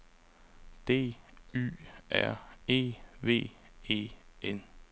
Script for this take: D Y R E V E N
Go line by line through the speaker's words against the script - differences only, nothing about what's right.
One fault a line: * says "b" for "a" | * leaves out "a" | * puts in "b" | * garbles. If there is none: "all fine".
all fine